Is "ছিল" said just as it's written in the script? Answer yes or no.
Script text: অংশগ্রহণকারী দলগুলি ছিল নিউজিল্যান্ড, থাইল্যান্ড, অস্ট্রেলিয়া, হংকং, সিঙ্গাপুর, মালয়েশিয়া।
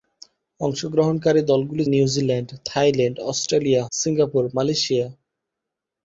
no